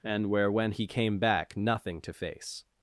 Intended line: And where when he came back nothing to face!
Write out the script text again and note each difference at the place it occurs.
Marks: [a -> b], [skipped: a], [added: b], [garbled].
And where when he came back nothing to face!